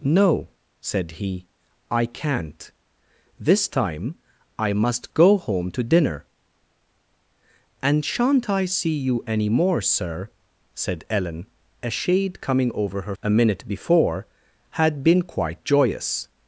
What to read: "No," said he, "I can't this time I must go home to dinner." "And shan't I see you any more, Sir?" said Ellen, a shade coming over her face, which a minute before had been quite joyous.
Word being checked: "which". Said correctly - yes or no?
no